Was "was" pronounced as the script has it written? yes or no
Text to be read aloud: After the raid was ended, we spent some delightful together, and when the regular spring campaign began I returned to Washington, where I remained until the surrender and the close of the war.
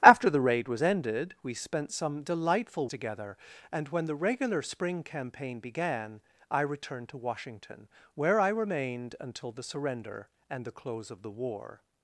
yes